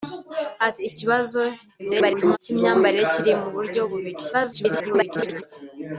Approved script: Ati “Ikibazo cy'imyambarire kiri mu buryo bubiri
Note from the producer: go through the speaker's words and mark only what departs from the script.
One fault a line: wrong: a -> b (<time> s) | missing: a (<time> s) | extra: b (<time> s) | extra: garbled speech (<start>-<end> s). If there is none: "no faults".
extra: garbled speech (1.8-2.4 s)
extra: garbled speech (4.3-5.4 s)